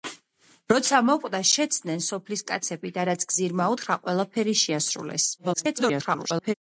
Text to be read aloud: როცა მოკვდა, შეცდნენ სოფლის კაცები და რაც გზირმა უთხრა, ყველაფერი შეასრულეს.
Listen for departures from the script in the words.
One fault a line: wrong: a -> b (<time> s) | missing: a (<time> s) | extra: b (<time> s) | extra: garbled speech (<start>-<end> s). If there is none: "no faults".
extra: garbled speech (5.4-6.5 s)